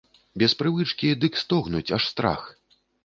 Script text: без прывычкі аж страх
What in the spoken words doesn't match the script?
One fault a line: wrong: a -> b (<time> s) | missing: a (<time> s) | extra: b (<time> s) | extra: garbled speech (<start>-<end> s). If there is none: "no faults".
extra: дык стогнуць (1.2 s)